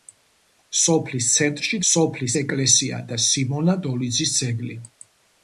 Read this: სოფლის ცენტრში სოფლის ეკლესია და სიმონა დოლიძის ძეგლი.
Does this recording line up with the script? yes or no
yes